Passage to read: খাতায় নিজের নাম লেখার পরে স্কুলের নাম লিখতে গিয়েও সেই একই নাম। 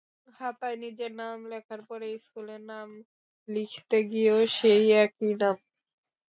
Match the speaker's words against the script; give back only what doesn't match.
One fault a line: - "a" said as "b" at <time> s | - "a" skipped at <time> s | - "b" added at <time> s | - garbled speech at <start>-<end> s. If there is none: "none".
none